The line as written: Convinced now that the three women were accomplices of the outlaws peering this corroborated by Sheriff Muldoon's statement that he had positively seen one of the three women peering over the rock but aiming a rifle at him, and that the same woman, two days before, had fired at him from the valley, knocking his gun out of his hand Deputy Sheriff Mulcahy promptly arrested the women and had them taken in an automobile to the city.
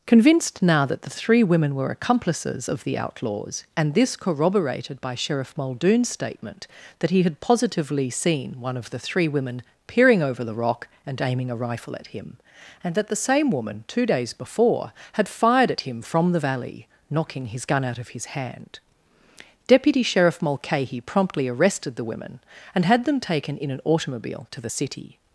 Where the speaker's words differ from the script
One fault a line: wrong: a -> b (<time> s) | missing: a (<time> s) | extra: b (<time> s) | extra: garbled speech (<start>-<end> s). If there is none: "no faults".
wrong: peering -> and (3.8 s)
wrong: but -> and (11.1 s)